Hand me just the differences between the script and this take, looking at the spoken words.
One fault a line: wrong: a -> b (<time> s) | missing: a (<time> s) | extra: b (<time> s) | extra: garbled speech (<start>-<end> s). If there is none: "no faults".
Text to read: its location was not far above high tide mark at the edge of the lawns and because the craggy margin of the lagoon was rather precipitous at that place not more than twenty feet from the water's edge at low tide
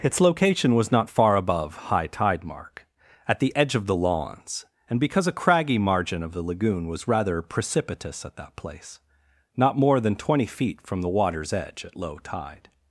wrong: the -> a (5.2 s)